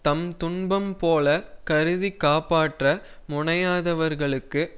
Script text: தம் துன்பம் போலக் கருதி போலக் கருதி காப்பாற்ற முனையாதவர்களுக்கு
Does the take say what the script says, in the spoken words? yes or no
no